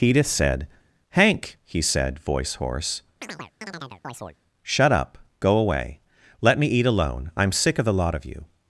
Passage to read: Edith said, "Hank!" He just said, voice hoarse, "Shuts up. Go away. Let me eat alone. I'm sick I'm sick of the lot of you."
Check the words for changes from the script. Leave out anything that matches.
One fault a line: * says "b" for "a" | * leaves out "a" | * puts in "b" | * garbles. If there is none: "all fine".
* leaves out "just"
* says "Shut" for "Shuts"
* leaves out "I'm sick"